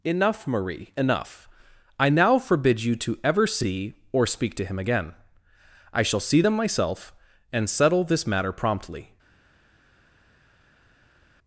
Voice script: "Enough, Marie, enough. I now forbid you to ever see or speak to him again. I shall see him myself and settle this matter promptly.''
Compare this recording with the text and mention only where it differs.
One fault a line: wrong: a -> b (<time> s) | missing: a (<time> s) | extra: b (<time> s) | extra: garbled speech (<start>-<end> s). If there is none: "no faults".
wrong: him -> them (6.4 s)